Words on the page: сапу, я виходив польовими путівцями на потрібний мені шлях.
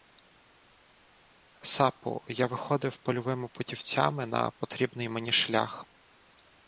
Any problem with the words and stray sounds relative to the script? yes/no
no